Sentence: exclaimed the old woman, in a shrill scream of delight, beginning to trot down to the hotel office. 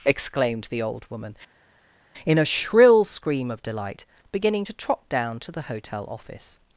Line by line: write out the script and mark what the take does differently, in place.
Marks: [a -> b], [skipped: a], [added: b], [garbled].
exclaimed the old woman, in a shrill scream of delight, beginning to trot down to the hotel office.